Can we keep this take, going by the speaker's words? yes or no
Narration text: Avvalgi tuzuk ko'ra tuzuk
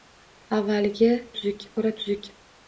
yes